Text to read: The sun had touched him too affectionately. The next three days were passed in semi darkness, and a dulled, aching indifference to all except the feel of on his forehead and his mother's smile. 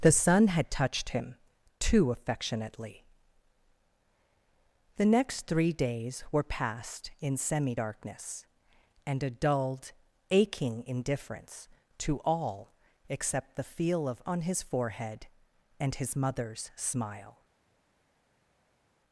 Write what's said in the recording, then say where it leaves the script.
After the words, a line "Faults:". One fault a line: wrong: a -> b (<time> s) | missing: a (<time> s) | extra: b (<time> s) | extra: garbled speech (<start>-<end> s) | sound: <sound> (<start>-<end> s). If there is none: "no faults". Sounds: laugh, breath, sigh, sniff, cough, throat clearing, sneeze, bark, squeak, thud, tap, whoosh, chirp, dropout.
The sun had touched him too affectionately. The next three days were passed in semi darkness, and a dulled, aching indifference to all except the feel of on his forehead and his mother's smile.
Faults:
no faults